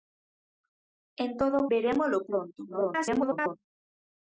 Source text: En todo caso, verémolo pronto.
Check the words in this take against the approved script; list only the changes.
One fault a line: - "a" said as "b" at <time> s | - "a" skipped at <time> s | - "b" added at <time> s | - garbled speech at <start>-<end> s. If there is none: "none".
- "caso" skipped at 1.6 s
- garbled speech at 2.7-3.6 s